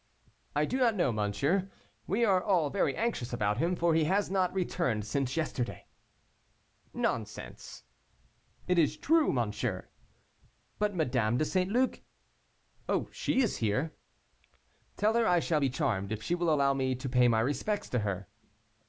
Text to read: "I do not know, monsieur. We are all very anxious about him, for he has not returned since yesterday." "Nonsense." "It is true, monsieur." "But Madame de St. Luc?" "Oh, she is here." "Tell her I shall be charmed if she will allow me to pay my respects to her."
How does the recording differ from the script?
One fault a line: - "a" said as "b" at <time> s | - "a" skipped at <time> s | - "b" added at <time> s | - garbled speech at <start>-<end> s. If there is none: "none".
none